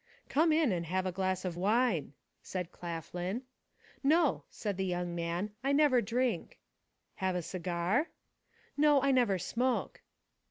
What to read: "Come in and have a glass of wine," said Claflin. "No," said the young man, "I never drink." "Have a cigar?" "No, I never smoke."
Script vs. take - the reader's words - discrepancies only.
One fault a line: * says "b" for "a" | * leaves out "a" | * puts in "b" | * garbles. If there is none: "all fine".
all fine